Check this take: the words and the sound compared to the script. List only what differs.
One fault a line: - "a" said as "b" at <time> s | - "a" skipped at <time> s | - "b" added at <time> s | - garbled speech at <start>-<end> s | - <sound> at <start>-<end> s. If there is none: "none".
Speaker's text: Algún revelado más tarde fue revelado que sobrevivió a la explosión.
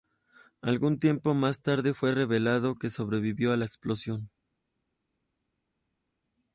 - "revelado" said as "tiempo" at 1.0 s